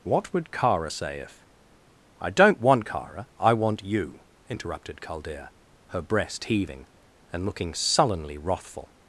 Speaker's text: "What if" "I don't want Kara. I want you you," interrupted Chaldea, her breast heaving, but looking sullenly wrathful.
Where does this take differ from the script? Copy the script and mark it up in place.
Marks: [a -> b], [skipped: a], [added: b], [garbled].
"What [added: would Kara say] if" "I don't want Kara. I want you [skipped: you,"] interrupted Chaldea, her breast heaving, [but -> and] looking sullenly wrathful.